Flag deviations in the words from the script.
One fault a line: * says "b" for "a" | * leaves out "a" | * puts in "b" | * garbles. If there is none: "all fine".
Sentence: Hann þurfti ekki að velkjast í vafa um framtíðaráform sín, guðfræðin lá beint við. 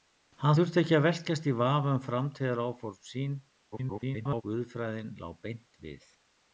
* garbles